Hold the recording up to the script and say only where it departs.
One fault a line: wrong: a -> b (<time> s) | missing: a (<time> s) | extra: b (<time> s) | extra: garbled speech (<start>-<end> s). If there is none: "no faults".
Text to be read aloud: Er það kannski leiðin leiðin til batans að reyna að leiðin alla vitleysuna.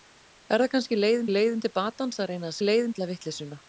no faults